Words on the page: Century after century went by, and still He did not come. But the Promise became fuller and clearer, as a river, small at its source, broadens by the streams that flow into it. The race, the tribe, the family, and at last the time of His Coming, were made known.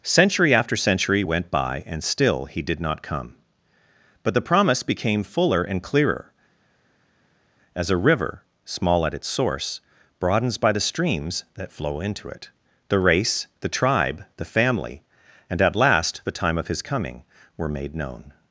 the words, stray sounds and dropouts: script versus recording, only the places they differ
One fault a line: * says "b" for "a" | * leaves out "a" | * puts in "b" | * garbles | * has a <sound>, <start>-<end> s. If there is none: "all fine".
all fine